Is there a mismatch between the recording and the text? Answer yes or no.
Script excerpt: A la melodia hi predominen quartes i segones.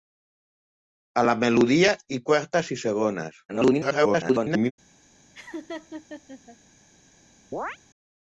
yes